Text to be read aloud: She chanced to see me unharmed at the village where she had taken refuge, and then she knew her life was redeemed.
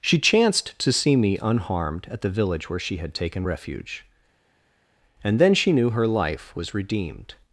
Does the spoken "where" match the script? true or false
true